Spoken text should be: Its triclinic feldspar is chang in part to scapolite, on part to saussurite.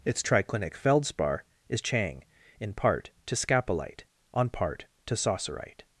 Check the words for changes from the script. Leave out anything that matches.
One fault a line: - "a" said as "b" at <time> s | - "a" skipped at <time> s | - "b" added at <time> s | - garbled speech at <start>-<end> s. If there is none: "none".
none